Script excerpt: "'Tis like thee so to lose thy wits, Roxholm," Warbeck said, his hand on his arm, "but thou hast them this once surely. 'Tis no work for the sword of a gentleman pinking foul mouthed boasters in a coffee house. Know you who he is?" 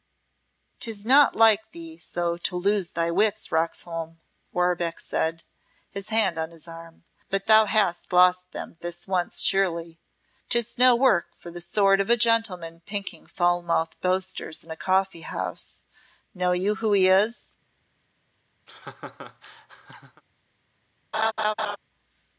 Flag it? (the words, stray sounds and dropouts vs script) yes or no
yes